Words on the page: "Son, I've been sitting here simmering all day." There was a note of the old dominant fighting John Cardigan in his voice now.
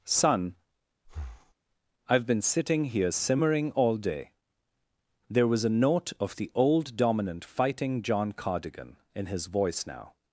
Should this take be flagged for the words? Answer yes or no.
no